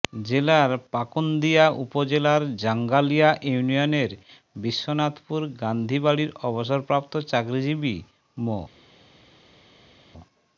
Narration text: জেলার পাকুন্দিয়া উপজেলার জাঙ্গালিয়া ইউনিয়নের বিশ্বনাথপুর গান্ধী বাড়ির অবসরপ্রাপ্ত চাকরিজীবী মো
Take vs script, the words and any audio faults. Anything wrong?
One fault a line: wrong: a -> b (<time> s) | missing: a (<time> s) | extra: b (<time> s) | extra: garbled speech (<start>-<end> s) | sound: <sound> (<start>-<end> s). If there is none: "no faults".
no faults